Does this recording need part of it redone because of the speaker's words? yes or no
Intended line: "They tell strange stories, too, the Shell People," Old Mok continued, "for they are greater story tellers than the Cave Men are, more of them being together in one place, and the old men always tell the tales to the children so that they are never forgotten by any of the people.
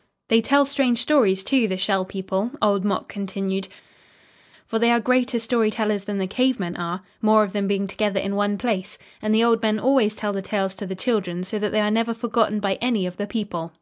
no